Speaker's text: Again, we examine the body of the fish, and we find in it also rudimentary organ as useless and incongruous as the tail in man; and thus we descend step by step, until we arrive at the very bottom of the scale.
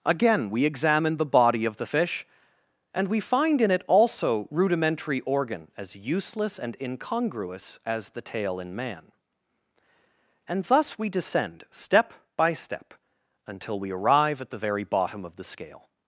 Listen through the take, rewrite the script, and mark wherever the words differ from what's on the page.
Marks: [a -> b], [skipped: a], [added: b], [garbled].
Again, we examine the body of the fish, and we find in it also rudimentary organ as useless and incongruous as the tail in man; and thus we descend step by step, until we arrive at the very bottom of the scale.